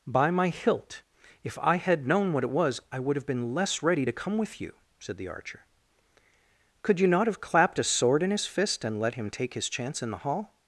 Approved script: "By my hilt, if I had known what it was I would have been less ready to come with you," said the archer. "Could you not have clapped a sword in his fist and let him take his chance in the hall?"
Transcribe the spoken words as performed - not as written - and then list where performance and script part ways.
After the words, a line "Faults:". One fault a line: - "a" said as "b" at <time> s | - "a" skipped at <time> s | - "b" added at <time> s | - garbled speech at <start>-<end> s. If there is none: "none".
"By my hilt, if I had known what it was I would have been less ready to come with you," said the archer. "Could you not have clapped a sword in his fist and let him take his chance in the hall?"
Faults:
none